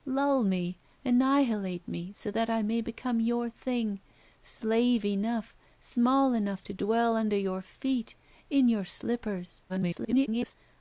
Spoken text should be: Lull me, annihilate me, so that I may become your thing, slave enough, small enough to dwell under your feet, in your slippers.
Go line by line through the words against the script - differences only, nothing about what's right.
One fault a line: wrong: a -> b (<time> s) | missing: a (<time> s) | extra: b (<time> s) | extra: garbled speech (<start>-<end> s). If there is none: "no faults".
extra: garbled speech (9.7-10.6 s)